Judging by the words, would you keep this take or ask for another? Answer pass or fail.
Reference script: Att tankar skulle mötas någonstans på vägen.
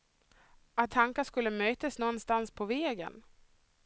pass